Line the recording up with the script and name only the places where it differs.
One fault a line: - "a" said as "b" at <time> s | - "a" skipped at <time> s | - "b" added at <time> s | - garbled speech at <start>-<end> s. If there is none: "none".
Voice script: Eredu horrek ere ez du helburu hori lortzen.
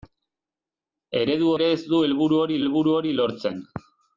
- "horrek" skipped at 1.5 s
- "helburu hori" added at 2.6 s